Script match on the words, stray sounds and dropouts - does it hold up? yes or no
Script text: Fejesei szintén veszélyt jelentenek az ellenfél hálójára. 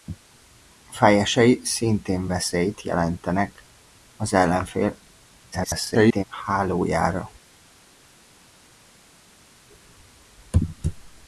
no